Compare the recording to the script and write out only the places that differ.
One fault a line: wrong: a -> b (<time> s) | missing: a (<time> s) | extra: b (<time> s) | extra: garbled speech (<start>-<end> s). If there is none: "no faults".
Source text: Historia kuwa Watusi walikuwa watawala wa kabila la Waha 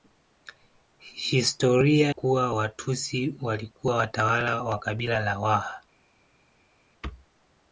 no faults